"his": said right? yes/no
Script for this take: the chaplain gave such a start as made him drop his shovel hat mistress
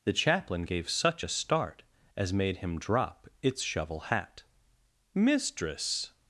no